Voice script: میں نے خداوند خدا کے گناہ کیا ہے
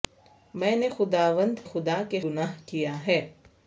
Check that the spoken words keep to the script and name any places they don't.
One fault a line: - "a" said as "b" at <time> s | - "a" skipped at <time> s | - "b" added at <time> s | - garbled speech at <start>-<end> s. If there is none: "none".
none